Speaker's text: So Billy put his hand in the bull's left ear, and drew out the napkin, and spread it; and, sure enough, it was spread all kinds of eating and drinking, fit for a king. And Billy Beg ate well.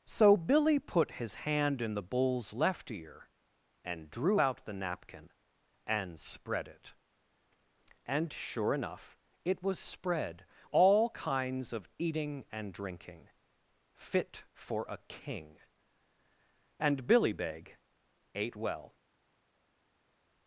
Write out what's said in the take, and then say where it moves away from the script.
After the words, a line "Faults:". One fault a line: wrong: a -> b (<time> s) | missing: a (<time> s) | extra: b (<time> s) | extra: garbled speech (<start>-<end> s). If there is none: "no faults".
So Billy put his hand in the bull's left ear, and drew out the napkin, and spread it; and, sure enough, it was spread all kinds of eating and drinking, fit for a king. And Billy Beg ate well.
Faults:
no faults